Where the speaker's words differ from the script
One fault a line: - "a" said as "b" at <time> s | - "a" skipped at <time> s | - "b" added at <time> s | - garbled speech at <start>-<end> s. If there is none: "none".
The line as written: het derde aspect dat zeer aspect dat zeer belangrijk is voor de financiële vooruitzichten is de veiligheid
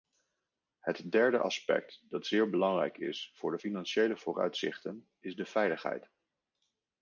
- "aspect dat zeer" skipped at 2.5 s